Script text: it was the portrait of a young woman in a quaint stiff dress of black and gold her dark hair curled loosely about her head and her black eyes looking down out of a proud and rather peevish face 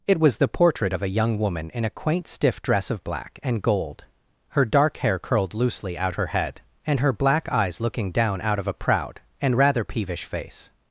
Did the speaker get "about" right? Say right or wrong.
wrong